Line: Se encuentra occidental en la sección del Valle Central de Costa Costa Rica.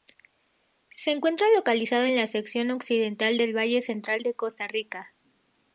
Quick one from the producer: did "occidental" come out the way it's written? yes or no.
no